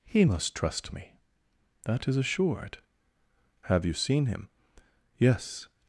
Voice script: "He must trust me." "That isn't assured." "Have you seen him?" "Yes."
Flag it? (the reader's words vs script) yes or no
yes